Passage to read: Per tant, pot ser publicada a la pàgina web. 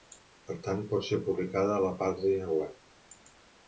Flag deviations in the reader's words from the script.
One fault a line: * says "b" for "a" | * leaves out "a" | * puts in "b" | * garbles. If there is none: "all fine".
all fine